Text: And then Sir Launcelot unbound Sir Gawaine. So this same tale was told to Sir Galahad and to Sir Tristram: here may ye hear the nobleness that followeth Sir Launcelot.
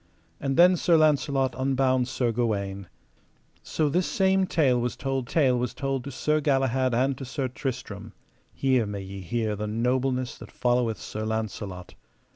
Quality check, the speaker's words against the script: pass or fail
fail